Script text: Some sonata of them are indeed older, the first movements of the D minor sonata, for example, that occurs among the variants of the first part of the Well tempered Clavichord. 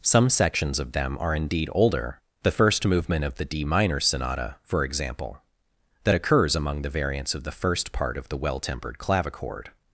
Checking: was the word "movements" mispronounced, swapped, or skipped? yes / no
yes